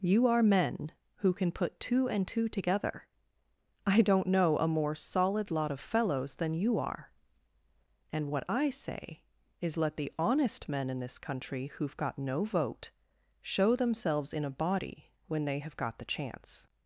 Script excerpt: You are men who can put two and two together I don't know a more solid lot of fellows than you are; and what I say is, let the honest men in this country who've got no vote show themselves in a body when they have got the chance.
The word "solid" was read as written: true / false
true